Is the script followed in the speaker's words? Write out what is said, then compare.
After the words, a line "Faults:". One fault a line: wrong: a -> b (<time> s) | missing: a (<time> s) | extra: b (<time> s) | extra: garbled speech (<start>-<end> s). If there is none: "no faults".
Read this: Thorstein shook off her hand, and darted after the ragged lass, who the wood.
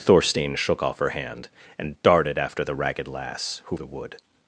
Thorstein shook off her hand, and darted after the ragged lass, who the wood.
Faults:
no faults